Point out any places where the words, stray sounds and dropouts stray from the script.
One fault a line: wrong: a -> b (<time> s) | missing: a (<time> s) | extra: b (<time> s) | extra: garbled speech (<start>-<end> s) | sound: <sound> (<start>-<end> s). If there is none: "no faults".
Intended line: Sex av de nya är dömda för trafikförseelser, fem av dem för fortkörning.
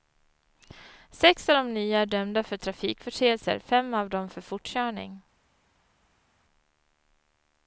no faults